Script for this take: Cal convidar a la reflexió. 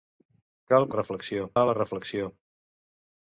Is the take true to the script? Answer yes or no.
no